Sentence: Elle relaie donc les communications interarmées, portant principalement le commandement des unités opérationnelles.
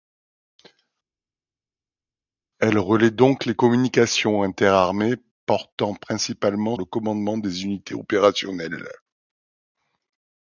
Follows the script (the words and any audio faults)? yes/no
yes